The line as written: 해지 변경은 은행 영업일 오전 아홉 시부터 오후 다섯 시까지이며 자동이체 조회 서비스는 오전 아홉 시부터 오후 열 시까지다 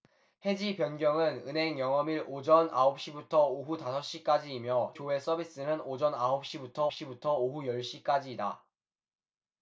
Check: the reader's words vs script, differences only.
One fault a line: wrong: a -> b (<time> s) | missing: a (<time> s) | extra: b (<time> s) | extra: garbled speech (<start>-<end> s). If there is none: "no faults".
missing: 자동이체 (5.0 s)
extra: 시부터 (6.9 s)